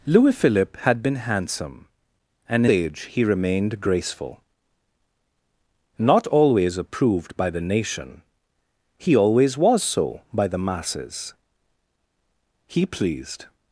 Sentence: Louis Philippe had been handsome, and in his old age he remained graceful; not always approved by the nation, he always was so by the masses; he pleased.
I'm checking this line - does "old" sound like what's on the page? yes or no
no